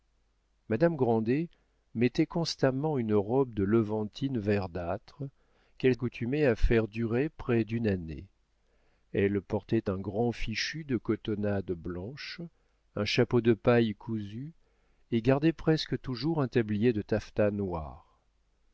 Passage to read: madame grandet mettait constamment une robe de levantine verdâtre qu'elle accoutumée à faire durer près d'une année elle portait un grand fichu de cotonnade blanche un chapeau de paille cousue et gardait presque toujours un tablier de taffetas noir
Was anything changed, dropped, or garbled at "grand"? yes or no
no